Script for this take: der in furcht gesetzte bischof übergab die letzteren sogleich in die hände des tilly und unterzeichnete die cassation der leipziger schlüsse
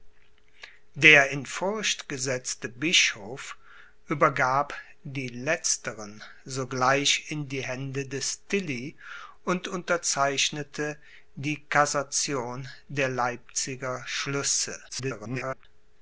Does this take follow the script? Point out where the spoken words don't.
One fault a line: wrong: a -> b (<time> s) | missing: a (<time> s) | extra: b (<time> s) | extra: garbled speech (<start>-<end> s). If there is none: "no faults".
extra: garbled speech (14.9-15.7 s)